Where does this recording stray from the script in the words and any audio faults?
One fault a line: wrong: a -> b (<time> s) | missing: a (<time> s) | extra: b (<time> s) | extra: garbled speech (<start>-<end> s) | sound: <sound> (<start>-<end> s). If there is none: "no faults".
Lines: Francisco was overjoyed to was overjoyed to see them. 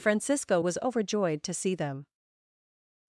missing: was overjoyed to (1.5 s)